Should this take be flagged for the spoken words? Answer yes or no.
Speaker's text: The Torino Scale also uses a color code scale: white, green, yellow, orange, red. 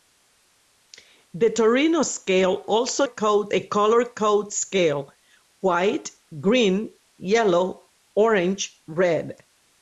yes